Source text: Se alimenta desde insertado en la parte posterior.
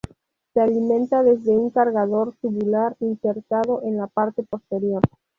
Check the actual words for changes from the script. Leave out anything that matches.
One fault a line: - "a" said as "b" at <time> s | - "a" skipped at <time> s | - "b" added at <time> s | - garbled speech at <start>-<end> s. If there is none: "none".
- "un cargador tubular" added at 1.5 s